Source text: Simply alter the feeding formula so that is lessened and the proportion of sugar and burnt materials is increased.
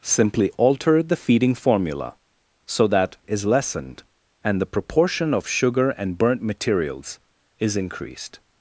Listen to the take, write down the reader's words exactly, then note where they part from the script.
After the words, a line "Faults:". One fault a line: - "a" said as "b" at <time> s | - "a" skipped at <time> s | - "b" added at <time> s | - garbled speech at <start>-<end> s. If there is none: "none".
Simply alter the feeding formula so that is lessened and the proportion of sugar and burnt materials is increased.
Faults:
none